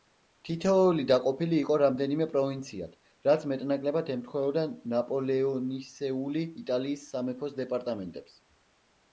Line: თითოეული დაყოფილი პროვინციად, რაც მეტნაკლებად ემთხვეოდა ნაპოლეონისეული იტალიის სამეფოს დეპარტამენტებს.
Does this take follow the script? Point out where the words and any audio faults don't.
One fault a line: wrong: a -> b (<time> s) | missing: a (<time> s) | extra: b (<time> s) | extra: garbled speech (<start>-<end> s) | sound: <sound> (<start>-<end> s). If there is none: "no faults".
extra: იყო რამდენიმე (1.6 s)